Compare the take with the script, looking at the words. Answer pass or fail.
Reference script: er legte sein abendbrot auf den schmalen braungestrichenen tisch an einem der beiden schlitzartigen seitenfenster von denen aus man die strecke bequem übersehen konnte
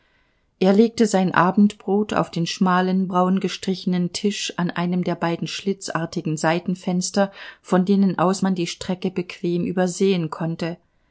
pass